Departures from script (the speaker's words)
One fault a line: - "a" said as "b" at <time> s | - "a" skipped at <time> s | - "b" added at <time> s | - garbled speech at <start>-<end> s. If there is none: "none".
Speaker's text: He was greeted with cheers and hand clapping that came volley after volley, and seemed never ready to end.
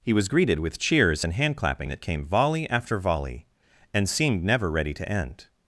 none